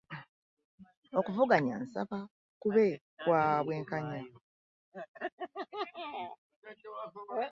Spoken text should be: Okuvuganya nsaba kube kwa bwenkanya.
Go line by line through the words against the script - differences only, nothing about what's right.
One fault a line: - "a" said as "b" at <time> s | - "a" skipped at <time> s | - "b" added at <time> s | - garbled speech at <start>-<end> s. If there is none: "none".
none